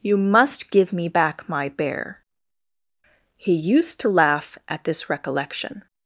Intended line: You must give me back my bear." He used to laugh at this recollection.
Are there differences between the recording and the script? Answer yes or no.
no